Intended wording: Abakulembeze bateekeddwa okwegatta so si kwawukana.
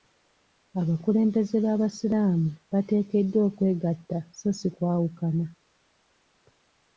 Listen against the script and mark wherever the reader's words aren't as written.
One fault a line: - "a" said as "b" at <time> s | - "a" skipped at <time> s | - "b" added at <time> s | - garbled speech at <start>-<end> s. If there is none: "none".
- "b'abasiraamu" added at 1.6 s